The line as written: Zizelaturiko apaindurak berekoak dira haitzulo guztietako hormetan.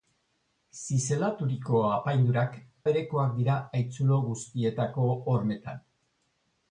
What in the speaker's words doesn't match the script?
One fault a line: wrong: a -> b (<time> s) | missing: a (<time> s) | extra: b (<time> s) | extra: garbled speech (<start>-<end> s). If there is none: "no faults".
no faults